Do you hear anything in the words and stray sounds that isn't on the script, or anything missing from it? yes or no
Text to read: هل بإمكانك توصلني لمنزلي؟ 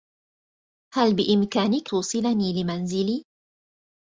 no